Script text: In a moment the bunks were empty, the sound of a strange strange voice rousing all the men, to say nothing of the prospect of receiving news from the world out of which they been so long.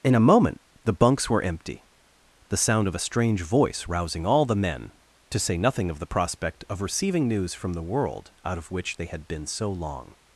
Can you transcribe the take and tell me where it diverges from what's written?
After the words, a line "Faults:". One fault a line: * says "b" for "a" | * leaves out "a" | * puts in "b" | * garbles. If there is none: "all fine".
In a moment the bunks were empty, the sound of a strange voice rousing all the men, to say nothing of the prospect of receiving news from the world out of which they had been so long.
Faults:
* leaves out "strange"
* puts in "had"